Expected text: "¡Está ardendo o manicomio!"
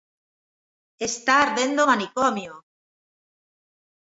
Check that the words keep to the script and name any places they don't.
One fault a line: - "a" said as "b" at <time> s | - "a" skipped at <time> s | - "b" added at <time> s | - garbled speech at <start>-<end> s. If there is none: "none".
none